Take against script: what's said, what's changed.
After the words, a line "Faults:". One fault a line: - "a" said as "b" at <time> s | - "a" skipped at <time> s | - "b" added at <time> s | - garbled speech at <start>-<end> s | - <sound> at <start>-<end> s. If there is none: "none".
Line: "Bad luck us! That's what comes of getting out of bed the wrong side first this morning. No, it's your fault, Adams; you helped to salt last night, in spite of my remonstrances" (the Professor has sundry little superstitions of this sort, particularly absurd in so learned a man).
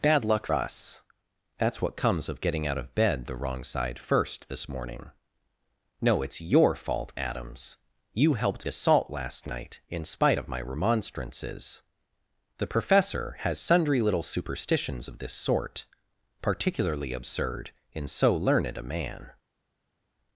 "Bad luck us! That's what comes of getting out of bed the wrong side first this morning. No, it's your fault, Adams; you helped to salt last night, in spite of my remonstrances" (the Professor has sundry little superstitions of this sort, particularly absurd in so learned a man).
Faults:
none